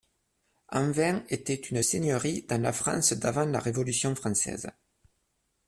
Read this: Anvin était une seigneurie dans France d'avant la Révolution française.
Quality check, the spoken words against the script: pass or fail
fail